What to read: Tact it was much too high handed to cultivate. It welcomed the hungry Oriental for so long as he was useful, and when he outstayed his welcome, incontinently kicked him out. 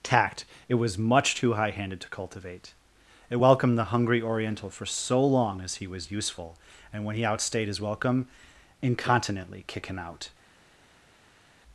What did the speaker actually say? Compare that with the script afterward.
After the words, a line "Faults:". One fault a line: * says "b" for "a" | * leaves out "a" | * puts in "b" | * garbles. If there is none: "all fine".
Tact it was much too high handed to cultivate. It welcomed the hungry Oriental for so long as he was useful, and when he outstayed his welcome, incontinently kick him out.
Faults:
* says "kick" for "kicked"